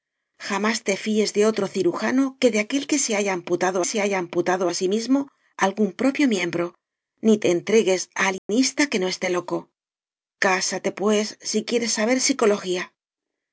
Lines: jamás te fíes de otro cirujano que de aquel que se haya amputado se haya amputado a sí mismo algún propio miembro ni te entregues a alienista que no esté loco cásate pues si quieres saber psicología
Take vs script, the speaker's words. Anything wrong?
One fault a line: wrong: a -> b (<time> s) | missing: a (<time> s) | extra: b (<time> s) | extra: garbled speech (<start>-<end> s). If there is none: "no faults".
no faults